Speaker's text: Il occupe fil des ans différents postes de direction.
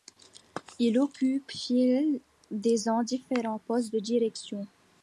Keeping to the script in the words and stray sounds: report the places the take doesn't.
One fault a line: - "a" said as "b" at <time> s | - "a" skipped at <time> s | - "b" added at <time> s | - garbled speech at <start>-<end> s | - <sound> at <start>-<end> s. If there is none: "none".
none